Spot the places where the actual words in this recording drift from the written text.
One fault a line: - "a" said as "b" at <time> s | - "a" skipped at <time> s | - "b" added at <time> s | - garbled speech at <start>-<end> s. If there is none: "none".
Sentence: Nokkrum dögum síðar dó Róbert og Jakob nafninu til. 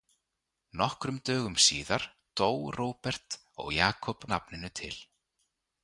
none